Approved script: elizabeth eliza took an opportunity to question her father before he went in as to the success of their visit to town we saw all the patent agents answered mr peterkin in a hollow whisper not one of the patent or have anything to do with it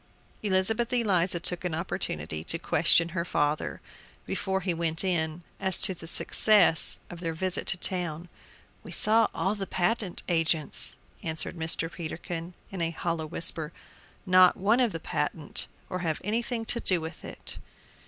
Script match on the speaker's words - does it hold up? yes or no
yes